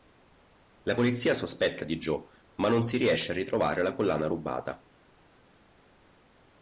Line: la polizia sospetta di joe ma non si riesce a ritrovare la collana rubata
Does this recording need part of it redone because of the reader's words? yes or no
no